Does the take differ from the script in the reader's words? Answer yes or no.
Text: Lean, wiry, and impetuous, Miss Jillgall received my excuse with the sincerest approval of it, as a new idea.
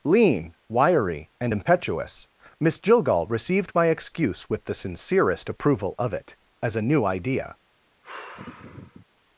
no